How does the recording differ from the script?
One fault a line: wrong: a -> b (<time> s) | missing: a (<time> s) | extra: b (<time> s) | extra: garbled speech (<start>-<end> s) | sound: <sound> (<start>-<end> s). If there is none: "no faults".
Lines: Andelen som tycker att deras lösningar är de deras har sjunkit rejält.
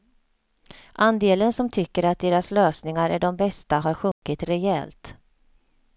wrong: deras -> bästa (3.4 s)
sound: dropout (4.1-4.2 s)